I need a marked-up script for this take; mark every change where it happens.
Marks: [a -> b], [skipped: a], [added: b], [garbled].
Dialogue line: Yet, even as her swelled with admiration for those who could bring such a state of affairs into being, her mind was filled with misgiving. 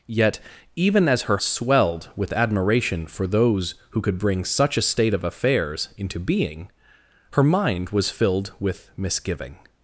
Yet, even as her swelled with admiration for those who could bring such a state of affairs into being, her mind was filled with misgiving.